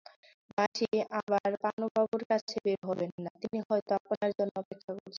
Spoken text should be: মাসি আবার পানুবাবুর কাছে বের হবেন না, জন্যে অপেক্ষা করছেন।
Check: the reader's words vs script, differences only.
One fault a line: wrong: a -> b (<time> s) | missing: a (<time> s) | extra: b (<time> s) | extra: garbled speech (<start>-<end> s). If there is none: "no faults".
extra: তিনি হয়তো আপনার (3.4 s)